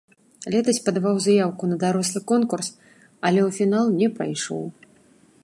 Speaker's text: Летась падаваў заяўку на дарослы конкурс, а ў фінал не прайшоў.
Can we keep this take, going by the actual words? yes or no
no